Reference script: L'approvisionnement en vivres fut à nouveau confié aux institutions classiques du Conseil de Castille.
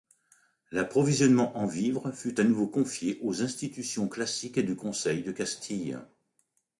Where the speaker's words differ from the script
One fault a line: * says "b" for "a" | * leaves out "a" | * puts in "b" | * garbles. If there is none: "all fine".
all fine